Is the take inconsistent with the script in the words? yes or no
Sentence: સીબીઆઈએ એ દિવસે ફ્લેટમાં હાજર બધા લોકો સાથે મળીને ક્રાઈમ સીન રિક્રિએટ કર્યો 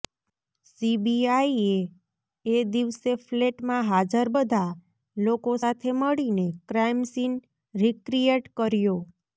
no